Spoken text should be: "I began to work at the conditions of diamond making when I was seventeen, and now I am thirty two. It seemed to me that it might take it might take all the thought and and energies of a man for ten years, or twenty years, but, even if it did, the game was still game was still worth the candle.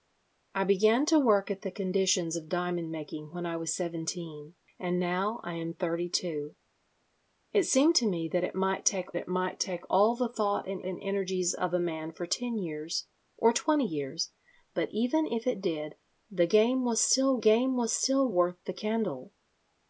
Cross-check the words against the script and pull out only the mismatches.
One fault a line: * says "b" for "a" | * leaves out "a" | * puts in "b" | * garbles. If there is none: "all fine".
all fine